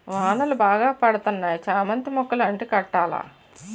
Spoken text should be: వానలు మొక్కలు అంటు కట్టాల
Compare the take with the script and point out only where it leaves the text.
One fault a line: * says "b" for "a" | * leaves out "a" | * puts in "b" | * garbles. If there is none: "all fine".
* puts in "బాగా పడతన్నాయి చామంతి"